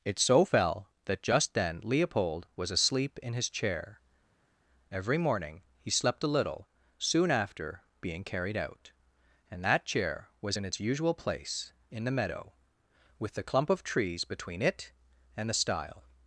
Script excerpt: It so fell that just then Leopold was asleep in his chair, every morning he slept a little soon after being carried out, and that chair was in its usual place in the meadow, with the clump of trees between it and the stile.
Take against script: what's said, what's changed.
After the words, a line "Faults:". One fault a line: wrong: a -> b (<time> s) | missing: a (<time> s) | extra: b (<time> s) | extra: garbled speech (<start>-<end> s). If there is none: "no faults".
It so fell that just then Leopold was asleep in his chair, every morning he slept a little soon after being carried out, and that chair was in its usual place in the meadow, with the clump of trees between it and the stile.
Faults:
no faults